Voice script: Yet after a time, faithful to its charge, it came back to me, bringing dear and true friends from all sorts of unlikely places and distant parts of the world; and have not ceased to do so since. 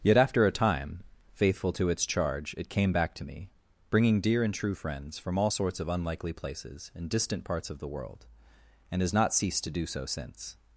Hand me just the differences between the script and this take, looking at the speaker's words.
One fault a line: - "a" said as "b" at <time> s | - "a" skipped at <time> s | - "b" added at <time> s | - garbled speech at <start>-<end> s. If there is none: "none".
- "have" said as "has" at 9.0 s